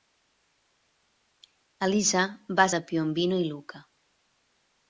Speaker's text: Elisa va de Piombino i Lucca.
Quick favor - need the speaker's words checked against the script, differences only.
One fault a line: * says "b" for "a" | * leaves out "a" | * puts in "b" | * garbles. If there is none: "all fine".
all fine